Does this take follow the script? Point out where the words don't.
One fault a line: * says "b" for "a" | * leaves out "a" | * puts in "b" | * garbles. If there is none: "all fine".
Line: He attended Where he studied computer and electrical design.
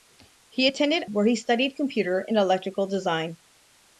all fine